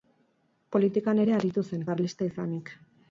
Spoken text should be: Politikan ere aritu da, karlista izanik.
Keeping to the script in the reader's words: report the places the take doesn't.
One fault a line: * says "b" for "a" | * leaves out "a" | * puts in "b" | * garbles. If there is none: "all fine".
* says "zen" for "da"